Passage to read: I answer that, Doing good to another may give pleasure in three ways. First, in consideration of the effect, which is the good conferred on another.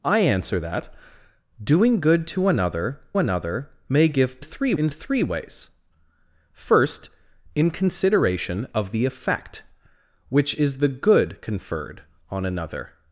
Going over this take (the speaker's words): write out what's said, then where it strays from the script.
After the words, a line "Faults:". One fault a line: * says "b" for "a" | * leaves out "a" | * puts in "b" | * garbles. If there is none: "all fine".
I answer that, Doing good to another another may give three in three ways. First, in consideration of the effect, which is the good conferred on another.
Faults:
* puts in "another"
* says "three" for "pleasure"